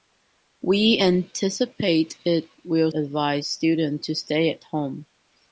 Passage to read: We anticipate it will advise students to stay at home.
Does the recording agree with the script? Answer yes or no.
yes